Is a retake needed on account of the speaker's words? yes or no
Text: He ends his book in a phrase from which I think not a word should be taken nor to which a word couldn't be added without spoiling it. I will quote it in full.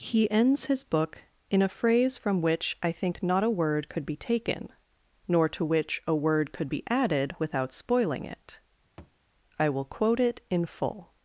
yes